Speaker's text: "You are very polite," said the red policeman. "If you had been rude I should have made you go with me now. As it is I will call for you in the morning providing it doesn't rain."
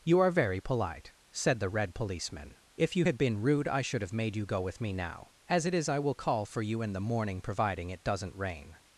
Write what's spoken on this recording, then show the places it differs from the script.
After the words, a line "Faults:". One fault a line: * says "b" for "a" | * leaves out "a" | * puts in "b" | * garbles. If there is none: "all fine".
"You are very polite," said the red policeman. "If you had been rude I should have made you go with me now. As it is I will call for you in the morning providing it doesn't rain."
Faults:
all fine